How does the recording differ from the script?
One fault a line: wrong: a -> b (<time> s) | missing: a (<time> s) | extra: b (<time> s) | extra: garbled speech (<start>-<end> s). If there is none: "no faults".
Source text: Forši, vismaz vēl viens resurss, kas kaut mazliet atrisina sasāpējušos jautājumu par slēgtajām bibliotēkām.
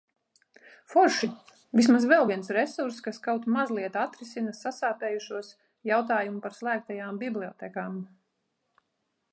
no faults